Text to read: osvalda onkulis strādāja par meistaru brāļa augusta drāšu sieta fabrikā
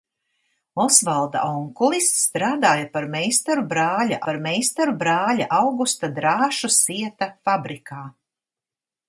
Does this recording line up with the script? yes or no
no